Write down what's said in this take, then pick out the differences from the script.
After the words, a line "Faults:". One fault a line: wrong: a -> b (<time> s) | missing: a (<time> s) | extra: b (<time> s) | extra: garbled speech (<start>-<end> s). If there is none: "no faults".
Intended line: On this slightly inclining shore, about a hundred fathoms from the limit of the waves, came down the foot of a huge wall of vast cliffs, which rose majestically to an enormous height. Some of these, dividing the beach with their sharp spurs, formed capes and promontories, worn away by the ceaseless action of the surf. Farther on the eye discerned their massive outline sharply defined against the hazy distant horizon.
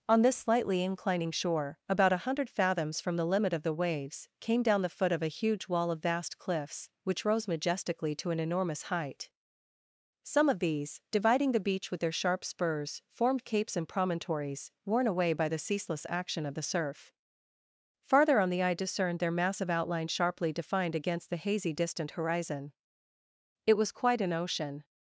On this slightly inclining shore, about a hundred fathoms from the limit of the waves, came down the foot of a huge wall of vast cliffs, which rose majestically to an enormous height. Some of these, dividing the beach with their sharp spurs, formed capes and promontories, worn away by the ceaseless action of the surf. Farther on the eye discerned their massive outline sharply defined against the hazy distant horizon. It was quite an ocean
Faults:
extra: It was quite an ocean (23.6 s)